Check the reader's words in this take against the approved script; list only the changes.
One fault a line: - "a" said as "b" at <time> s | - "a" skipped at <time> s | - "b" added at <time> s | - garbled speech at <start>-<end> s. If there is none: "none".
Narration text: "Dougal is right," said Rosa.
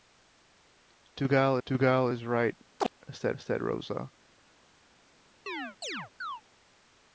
- "dougal" added at 1.6 s
- "said" added at 3.4 s